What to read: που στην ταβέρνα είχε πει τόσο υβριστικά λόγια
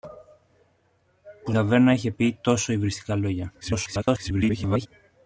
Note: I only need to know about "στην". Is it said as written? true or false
false